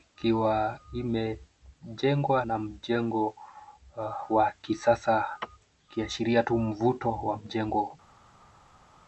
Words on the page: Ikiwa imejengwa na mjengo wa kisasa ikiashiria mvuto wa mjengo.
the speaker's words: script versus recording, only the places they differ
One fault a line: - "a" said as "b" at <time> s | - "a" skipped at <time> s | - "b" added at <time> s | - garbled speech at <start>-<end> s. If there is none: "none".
- "tu" added at 6.4 s